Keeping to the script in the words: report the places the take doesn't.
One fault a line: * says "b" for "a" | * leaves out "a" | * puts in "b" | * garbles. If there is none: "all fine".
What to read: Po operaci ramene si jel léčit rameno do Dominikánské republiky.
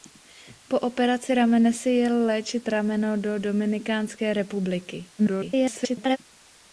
* garbles